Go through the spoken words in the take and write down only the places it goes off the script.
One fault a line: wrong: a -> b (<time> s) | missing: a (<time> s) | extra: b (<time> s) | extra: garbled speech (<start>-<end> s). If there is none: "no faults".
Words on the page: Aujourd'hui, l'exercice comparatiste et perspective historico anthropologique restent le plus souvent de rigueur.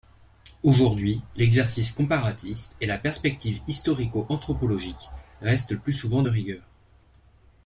extra: la (2.9 s)